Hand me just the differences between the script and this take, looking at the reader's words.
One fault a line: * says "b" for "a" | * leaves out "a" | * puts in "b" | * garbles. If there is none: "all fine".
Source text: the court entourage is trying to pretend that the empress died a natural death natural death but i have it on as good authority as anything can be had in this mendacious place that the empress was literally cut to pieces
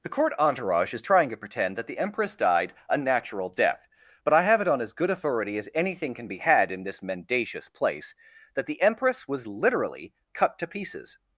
* leaves out "natural death"